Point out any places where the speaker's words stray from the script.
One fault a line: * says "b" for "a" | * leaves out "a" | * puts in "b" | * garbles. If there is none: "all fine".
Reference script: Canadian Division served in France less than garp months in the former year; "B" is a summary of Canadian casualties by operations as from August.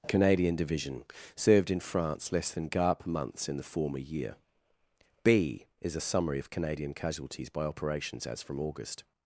all fine